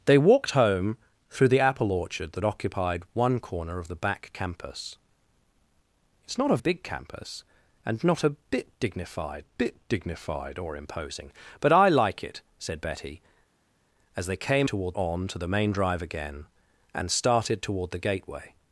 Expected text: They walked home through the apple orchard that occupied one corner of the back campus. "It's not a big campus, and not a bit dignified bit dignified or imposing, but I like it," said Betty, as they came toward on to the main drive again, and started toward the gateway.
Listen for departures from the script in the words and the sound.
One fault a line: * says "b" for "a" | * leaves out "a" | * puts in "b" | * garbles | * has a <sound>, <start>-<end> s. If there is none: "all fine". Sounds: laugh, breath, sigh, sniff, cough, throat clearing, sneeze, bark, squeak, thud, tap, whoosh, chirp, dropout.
all fine